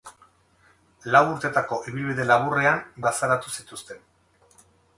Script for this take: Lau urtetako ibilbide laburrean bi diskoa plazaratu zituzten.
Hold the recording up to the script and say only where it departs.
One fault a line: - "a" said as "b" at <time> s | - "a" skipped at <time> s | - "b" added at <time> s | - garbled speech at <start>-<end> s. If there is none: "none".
- "bi diskoa" skipped at 2.8 s